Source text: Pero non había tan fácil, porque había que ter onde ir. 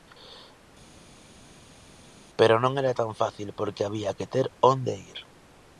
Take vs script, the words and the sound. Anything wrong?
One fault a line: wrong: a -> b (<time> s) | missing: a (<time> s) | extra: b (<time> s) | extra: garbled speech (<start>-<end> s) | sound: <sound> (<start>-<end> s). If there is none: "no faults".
wrong: había -> era (2.8 s)